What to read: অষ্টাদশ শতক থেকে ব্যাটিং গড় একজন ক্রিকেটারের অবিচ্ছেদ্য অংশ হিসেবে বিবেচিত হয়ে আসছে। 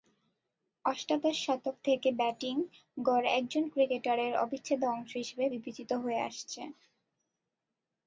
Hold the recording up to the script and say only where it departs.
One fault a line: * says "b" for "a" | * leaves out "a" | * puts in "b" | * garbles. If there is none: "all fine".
all fine